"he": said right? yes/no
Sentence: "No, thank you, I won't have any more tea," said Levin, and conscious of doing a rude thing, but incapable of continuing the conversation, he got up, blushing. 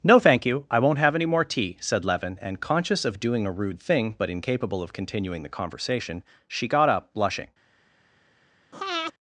no